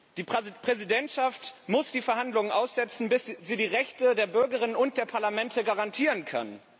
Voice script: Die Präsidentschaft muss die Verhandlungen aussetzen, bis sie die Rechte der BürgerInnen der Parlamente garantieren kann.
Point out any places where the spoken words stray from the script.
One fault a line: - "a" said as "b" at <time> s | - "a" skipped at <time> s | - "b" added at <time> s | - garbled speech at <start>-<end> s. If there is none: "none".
- "und" added at 4.8 s